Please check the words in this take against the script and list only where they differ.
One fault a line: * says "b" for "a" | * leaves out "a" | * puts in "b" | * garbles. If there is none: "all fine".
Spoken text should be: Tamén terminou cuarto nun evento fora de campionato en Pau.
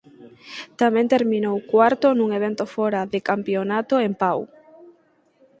all fine